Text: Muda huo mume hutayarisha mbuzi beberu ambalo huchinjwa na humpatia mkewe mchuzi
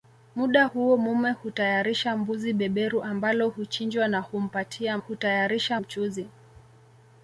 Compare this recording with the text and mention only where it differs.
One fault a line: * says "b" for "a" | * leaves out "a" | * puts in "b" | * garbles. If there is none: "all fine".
* says "hutayarisha" for "mkewe"